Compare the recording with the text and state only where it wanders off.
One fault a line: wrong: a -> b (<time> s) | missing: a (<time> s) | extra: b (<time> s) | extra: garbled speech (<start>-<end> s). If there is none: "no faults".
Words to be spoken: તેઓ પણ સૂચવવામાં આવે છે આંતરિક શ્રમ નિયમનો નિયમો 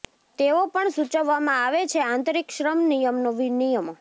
no faults